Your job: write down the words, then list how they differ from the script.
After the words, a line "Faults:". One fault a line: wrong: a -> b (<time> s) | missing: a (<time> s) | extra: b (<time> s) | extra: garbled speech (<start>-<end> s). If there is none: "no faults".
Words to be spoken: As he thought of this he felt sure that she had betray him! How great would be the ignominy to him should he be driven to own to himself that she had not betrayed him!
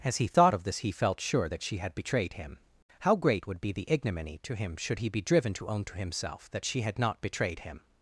As he thought of this he felt sure that she had betrayed him! How great would be the ignominy to him should he be driven to own to himself that she had not betrayed him!
Faults:
wrong: betray -> betrayed (1.9 s)